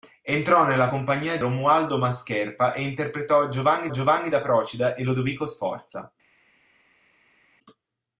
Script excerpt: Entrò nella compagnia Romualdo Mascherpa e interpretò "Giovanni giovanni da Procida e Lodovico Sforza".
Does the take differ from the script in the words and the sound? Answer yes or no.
no